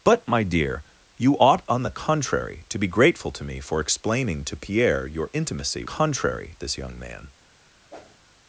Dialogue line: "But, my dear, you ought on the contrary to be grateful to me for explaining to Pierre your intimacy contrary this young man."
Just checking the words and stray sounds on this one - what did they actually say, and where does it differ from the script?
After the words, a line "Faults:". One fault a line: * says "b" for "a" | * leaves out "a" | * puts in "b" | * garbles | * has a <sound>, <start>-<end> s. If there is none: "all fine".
"But, my dear, you ought on the contrary to be grateful to me for explaining to Pierre your intimacy contrary this young man."
Faults:
* has a whoosh, 7.9-8.2 s